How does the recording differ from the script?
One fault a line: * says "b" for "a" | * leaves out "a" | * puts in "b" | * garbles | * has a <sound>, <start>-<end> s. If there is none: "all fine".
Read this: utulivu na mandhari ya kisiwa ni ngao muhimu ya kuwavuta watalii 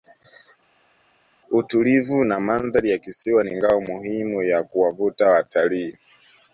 all fine